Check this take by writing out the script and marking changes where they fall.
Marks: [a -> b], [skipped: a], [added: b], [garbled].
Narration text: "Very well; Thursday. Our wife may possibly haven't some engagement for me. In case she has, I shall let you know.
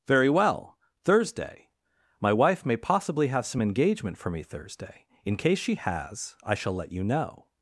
"Very well; Thursday. [Our -> My] wife may possibly [haven't -> have] some engagement for me. [added: Thursday] In case she has, I shall let you know.